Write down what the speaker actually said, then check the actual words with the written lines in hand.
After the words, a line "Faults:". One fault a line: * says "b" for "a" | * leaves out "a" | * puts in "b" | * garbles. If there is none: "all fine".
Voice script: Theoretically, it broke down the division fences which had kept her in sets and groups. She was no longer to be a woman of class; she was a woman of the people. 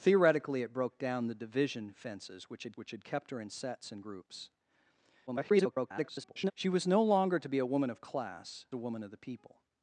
Theoretically, it broke down the division fences which had which had kept her in sets and groups. [garbled] She was no longer to be a woman of class; a woman of the people.
Faults:
* puts in "which had"
* garbles
* leaves out "she was"